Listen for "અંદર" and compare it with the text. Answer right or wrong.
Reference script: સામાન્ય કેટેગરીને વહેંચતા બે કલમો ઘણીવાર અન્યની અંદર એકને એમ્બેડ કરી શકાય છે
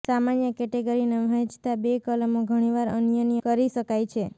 wrong